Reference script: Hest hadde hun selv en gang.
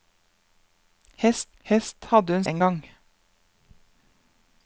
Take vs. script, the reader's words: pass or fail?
fail